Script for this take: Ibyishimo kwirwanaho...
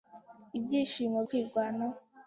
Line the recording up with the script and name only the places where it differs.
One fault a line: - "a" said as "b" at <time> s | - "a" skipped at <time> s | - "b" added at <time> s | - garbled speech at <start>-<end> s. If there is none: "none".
none